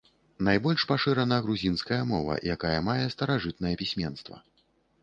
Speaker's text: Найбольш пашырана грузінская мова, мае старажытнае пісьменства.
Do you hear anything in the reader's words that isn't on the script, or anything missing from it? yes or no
yes